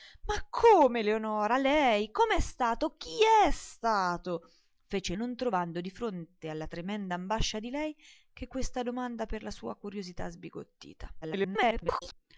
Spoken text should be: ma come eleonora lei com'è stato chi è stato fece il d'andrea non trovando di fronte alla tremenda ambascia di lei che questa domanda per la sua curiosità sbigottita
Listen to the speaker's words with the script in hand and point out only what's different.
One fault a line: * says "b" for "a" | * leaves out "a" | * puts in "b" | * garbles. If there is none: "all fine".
* leaves out "il d'andrea"
* garbles